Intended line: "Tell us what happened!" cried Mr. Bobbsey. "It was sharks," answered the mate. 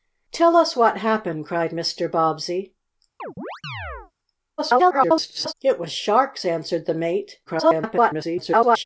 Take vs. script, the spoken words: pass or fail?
fail